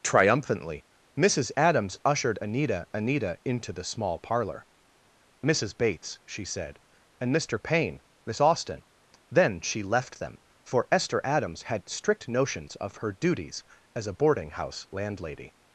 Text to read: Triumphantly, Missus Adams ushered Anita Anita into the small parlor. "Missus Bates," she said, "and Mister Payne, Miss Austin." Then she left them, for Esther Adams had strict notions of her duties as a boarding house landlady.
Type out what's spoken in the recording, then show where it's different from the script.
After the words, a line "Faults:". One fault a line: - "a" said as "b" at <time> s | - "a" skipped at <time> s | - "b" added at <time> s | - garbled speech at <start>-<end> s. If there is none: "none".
Triumphantly, Missus Adams ushered Anita Anita into the small parlor. "Missus Bates," she said, "and Mister Payne, Miss Austin." Then she left them, for Esther Adams had strict notions of her duties as a boarding house landlady.
Faults:
none